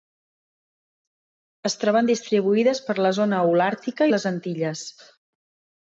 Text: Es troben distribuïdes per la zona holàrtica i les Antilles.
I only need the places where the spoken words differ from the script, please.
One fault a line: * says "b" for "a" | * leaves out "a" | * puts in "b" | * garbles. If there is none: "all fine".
all fine